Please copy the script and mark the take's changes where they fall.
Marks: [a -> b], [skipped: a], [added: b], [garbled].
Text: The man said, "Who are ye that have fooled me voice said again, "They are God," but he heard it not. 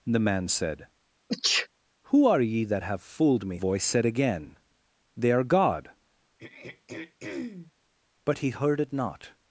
The man said, "Who are ye that have fooled me voice said again, "They are God," but he heard it not.